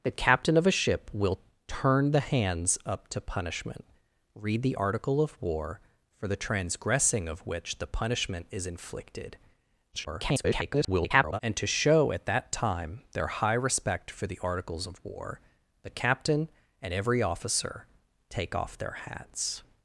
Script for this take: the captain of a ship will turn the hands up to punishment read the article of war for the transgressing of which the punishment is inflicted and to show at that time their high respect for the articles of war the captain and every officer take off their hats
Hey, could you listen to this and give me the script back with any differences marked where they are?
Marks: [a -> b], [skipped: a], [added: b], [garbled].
the captain of a ship will turn the hands up to punishment read the article of war for the transgressing of which the punishment is inflicted [garbled] and to show at that time their high respect for the articles of war the captain and every officer take off their hats